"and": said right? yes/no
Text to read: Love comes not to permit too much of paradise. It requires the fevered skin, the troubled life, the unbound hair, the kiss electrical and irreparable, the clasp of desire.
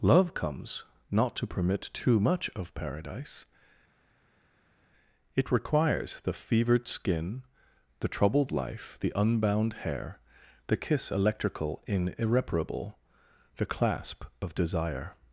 no